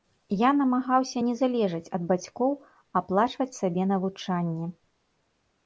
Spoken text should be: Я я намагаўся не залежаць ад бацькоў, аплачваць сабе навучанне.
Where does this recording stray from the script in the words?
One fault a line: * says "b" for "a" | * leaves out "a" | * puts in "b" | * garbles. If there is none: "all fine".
* leaves out "я"